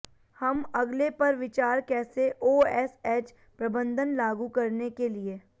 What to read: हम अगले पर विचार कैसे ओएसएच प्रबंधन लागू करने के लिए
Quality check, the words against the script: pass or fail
pass